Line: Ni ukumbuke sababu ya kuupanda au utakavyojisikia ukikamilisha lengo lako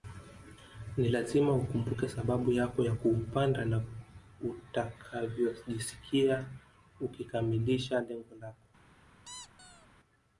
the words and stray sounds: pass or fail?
fail